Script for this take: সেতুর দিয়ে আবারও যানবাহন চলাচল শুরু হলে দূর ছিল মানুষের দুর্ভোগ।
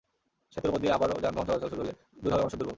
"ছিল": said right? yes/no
no